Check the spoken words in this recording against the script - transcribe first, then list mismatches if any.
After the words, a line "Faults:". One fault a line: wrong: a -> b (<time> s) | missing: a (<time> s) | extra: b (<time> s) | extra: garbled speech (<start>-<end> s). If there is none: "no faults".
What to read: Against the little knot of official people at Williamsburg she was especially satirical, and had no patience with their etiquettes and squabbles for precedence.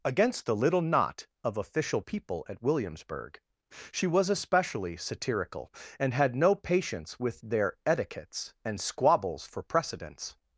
Against the little knot of official people at Williamsburg she was especially satirical, and had no patience with their etiquettes and squabbles for precedence.
Faults:
no faults